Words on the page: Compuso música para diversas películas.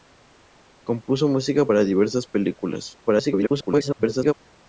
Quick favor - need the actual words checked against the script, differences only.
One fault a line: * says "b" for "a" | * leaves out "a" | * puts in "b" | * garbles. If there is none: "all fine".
* garbles